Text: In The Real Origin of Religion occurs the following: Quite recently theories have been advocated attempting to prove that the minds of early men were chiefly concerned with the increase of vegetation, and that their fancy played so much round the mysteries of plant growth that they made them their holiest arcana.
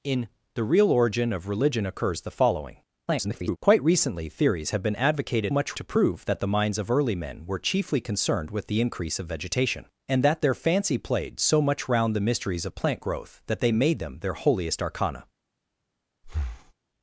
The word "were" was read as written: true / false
true